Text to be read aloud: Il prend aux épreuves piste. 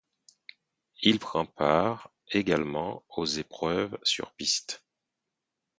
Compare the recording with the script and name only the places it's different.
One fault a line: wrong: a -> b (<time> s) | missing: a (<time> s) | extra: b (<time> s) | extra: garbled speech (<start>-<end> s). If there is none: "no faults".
extra: part également (1.4 s)
extra: sur (4.0 s)